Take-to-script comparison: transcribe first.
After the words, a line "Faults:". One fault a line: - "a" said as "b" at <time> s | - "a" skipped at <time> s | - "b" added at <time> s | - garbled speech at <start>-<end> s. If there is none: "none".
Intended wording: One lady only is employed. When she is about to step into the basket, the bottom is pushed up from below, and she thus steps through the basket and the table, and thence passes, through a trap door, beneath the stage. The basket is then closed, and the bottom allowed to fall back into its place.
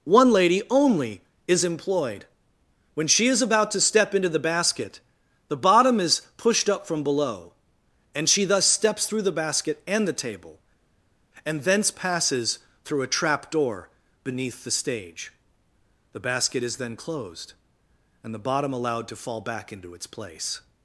One lady only is employed. When she is about to step into the basket, the bottom is pushed up from below, and she thus steps through the basket and the table, and thence passes, through a trap door, beneath the stage. The basket is then closed, and the bottom allowed to fall back into its place.
Faults:
none